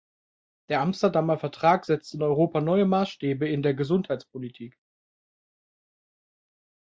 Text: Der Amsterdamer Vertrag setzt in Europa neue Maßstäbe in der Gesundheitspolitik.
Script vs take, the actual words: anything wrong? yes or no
no